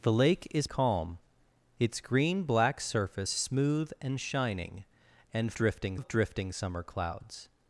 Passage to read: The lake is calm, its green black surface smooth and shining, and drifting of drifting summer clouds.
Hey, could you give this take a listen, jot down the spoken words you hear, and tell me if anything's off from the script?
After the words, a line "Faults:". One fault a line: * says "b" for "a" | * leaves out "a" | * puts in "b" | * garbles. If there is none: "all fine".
The lake is calm, its green black surface smooth and shining, and drifting of drifting summer clouds.
Faults:
all fine